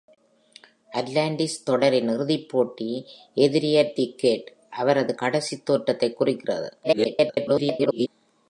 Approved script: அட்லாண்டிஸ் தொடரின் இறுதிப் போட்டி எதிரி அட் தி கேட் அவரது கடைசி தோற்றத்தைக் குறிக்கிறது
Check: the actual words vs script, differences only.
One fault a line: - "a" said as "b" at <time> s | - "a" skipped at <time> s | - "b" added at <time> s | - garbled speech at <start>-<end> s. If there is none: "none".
- garbled speech at 6.8-8.1 s